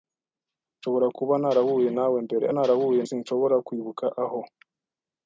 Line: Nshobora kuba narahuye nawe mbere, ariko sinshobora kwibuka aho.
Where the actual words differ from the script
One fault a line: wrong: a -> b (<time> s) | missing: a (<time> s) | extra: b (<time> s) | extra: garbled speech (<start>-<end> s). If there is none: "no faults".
wrong: ariko -> narahuye (2.5 s)